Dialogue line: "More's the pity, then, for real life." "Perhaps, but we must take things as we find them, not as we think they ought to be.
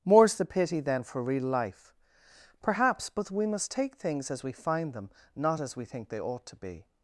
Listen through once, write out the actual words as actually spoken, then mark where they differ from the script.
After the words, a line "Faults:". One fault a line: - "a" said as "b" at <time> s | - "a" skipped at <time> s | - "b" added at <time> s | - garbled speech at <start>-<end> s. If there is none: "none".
"More's the pity, then, for real life." "Perhaps, but we must take things as we find them, not as we think they ought to be.
Faults:
none